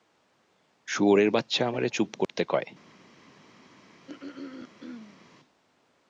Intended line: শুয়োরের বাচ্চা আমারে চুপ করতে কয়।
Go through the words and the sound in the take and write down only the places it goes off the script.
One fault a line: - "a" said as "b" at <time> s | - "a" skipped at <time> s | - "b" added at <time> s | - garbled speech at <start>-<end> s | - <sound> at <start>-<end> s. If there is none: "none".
- dropout at 2.2-2.3 s
- throat clearing at 4.1-5.3 s